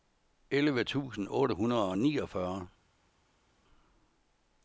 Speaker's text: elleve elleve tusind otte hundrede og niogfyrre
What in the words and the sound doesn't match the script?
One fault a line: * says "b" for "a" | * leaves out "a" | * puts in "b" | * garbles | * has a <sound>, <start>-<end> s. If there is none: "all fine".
* leaves out "elleve"